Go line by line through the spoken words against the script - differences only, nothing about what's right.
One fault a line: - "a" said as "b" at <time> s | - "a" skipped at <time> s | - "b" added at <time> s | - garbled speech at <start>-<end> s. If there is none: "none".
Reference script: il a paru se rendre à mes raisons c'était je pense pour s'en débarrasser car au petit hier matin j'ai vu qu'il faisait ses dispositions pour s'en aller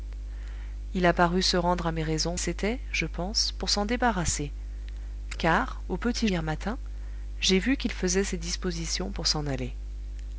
none